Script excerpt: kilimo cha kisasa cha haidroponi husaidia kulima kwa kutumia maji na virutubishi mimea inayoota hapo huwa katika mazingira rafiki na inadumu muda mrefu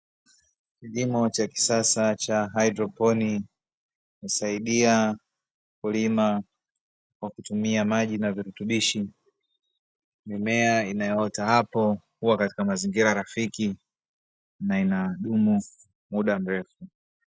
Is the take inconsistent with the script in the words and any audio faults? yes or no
no